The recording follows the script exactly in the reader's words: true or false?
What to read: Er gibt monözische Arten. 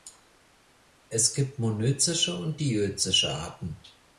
false